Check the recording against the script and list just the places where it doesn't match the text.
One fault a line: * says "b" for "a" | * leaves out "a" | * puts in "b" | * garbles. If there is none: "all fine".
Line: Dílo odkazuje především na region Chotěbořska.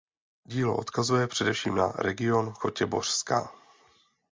all fine